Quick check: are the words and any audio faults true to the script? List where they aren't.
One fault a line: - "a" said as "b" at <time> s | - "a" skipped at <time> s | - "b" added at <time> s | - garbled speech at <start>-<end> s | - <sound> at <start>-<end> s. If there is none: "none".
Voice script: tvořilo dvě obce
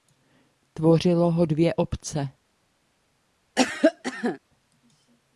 - "ho" added at 1.3 s
- cough at 3.6-4.4 s